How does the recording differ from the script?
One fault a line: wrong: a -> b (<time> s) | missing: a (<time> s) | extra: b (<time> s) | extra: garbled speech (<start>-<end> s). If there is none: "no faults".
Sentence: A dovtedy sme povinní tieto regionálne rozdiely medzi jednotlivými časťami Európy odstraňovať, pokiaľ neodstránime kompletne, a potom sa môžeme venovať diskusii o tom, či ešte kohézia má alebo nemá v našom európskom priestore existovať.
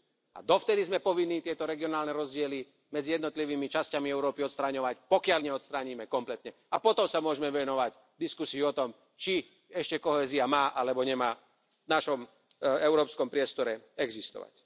no faults